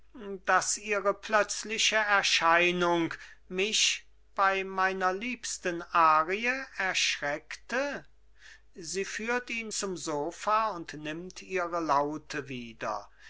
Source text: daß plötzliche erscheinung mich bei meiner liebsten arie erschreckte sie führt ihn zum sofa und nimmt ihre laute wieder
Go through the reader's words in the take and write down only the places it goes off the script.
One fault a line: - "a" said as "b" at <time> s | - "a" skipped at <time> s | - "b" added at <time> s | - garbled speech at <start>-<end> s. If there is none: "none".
- "ihre" added at 0.8 s